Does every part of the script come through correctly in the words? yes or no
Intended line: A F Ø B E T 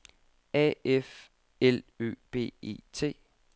no